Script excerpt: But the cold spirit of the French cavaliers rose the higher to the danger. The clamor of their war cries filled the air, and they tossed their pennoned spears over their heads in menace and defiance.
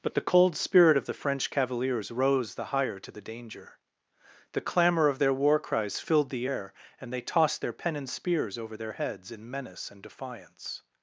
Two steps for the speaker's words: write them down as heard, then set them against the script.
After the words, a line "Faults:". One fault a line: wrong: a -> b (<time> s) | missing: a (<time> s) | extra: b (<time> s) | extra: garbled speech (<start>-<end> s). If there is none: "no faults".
But the cold spirit of the French cavaliers rose the higher to the danger. The clamor of their war cries filled the air, and they tossed their pennoned spears over their heads in menace and defiance.
Faults:
no faults